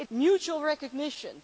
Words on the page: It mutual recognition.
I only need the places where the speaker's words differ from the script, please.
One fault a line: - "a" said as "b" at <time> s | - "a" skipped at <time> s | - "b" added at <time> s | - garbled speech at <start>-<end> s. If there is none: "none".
none